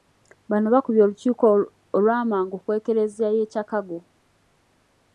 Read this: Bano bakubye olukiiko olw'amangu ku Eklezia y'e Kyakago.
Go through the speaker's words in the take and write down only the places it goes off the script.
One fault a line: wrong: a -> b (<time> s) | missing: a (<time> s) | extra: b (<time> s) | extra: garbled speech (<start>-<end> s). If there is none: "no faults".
no faults